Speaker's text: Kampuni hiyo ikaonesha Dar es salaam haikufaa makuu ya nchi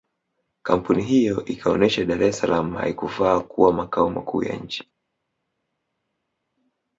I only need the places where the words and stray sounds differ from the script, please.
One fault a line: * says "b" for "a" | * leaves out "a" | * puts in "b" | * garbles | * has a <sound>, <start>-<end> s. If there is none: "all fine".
* puts in "kuwa makao"